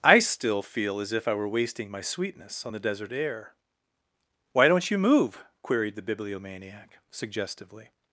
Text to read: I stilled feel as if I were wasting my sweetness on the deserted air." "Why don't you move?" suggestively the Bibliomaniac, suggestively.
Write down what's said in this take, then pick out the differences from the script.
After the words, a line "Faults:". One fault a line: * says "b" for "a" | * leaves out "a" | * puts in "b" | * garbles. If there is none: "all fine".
I still feel as if I were wasting my sweetness on the desert air." "Why don't you move?" queried the Bibliomaniac, suggestively.
Faults:
* says "still" for "stilled"
* says "desert" for "deserted"
* says "queried" for "suggestively"